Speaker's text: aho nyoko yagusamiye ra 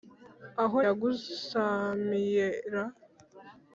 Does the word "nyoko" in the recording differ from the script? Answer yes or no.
yes